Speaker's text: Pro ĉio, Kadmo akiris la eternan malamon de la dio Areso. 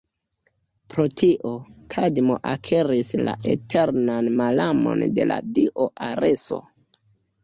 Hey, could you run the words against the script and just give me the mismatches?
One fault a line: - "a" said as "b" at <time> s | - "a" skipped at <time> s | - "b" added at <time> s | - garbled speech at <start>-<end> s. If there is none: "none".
- "ĉio" said as "tio" at 1.2 s